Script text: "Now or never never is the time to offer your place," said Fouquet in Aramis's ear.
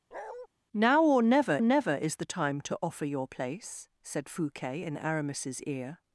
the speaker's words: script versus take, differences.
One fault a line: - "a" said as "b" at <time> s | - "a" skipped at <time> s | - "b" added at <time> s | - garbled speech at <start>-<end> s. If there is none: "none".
none